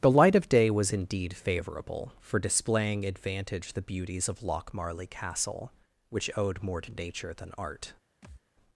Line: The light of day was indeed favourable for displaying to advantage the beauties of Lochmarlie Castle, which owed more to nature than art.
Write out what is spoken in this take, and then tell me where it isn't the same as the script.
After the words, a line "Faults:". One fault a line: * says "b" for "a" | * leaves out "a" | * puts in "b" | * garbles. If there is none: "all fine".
The light of day was indeed favourable for displaying advantage the beauties of Lochmarlie Castle, which owed more to nature than art.
Faults:
* leaves out "to"